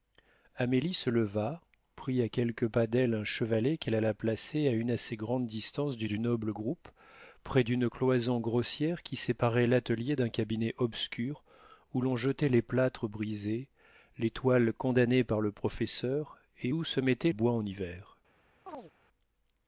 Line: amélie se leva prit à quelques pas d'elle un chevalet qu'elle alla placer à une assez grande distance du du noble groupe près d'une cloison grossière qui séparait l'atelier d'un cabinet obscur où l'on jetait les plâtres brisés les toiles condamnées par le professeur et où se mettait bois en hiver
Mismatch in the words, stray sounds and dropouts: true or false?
true